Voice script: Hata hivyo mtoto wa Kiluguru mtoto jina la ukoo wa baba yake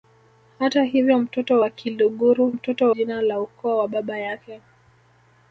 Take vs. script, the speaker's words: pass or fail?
pass